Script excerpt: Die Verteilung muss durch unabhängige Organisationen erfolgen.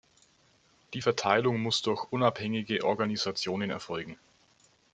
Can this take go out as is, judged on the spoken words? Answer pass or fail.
pass